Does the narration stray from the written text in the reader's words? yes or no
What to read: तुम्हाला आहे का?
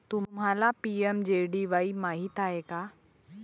yes